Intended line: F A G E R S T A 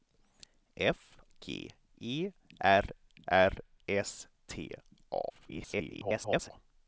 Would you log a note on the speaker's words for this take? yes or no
yes